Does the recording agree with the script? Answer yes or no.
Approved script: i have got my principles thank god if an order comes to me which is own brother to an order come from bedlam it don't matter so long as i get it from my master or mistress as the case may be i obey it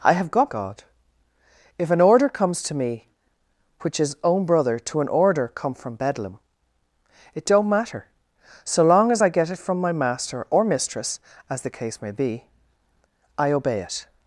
no